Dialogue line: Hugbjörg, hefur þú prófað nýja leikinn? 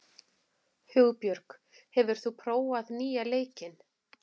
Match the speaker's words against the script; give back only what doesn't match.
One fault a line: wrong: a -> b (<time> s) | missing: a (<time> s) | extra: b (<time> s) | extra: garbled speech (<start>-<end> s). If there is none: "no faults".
no faults